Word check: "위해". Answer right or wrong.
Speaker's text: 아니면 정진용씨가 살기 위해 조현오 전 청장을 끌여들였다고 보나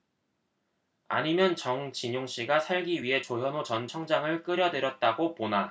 right